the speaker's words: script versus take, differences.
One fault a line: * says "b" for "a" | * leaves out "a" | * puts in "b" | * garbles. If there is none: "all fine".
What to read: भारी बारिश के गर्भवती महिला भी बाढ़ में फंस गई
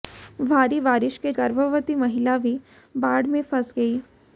all fine